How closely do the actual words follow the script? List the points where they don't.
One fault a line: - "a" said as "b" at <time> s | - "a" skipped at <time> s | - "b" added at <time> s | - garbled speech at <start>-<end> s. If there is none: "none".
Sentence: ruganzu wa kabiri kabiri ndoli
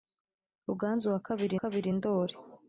none